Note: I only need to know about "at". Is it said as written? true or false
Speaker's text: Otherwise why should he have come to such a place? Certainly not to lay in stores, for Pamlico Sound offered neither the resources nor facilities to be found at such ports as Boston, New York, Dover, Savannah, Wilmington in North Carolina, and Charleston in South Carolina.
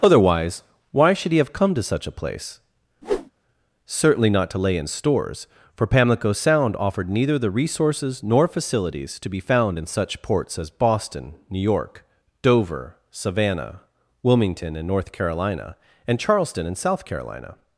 false